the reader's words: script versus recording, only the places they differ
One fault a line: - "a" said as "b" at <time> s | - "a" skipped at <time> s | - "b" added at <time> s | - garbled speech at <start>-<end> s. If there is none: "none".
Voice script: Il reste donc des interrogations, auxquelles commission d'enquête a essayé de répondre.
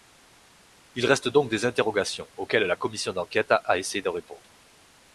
- "la" added at 2.6 s